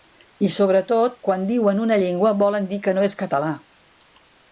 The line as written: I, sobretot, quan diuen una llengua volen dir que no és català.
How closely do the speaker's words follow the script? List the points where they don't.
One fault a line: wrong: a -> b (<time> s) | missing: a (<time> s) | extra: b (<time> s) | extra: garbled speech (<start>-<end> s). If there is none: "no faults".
no faults